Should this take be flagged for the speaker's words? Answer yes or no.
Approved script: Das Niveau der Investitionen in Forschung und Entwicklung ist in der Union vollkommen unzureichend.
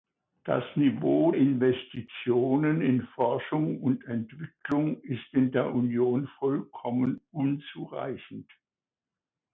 yes